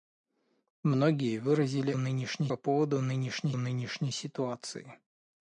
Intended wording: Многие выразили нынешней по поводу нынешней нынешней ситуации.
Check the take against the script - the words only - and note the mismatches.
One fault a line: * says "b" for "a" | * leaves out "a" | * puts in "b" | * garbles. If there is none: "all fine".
all fine